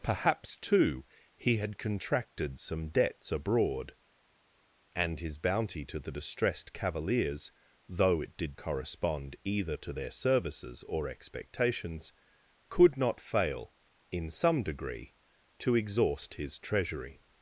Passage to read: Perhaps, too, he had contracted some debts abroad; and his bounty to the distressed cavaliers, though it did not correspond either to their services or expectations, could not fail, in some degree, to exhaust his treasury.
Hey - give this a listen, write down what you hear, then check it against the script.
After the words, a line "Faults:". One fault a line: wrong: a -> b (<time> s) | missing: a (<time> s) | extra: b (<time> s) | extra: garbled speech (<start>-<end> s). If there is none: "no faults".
Perhaps, too, he had contracted some debts abroad; and his bounty to the distressed cavaliers, though it did correspond either to their services or expectations, could not fail, in some degree, to exhaust his treasury.
Faults:
missing: not (8.6 s)